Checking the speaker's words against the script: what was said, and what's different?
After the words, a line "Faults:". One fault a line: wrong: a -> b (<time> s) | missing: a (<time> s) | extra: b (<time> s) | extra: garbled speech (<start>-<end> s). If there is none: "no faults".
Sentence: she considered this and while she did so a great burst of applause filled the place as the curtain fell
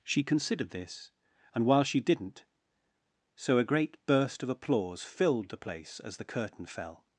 she considered this and while she didn't so a great burst of applause filled the place as the curtain fell
Faults:
wrong: did -> didn't (2.0 s)